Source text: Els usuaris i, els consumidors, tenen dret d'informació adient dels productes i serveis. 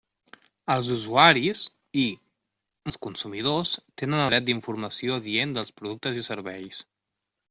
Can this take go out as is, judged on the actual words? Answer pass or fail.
pass